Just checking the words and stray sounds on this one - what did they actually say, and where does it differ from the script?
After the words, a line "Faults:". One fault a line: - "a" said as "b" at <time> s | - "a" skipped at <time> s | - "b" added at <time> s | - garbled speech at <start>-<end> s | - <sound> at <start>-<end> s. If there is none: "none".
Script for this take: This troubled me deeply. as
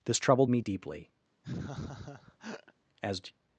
This troubled me deeply. as
Faults:
- laugh at 1.4-2.7 s